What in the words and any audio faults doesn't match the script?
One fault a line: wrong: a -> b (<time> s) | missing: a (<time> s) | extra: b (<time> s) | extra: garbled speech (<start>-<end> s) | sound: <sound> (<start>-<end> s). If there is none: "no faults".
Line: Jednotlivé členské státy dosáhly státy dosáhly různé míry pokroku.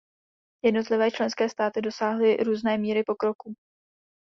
missing: státy dosáhly (2.4 s)